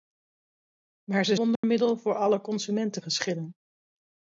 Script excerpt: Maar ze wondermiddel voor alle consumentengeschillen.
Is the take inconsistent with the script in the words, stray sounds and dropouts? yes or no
yes